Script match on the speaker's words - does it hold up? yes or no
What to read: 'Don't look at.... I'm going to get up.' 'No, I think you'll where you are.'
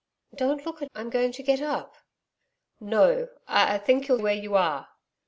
yes